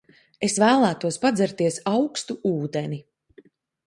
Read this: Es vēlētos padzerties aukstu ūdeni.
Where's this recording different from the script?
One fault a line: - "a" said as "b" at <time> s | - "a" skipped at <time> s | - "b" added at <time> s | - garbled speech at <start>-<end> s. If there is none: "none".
none